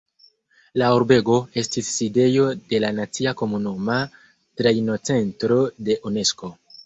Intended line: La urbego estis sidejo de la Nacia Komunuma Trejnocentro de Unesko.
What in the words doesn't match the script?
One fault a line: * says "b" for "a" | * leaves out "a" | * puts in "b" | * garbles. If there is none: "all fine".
all fine